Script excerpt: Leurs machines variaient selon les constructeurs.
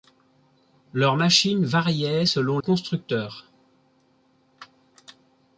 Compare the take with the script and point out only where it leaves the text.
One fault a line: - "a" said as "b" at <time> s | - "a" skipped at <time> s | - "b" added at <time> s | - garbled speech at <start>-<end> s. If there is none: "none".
- "les" skipped at 2.6 s